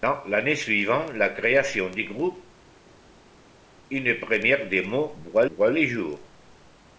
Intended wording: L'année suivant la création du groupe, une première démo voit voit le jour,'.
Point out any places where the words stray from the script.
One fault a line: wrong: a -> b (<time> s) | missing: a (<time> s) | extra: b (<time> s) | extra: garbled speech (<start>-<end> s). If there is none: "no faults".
no faults